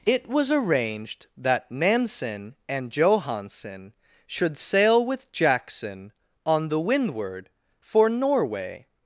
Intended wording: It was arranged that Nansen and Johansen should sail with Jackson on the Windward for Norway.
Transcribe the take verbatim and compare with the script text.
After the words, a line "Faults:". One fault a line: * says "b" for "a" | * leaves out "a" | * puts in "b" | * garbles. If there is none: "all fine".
It was arranged that Nansen and Johansen should sail with Jackson on the Windward for Norway.
Faults:
all fine